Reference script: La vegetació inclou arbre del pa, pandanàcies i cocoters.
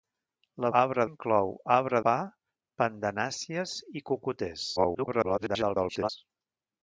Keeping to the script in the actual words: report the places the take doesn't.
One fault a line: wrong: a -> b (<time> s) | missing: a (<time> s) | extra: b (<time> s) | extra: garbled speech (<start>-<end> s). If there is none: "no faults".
wrong: vegetació -> arbre (0.8 s)
missing: del (2.0 s)
extra: garbled speech (4.8-6.1 s)